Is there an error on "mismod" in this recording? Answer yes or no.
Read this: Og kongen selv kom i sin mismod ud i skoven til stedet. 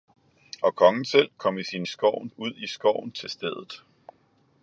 yes